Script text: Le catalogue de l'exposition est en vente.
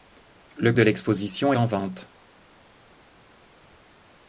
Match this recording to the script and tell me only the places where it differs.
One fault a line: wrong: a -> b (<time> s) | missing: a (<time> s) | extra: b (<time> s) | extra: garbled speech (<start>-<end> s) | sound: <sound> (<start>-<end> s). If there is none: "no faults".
missing: catalogue (0.7 s)
missing: est (1.5 s)